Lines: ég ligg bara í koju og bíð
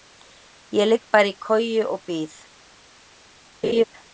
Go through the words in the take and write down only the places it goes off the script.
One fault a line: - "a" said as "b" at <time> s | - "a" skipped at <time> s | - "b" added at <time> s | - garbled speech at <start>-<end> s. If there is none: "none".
none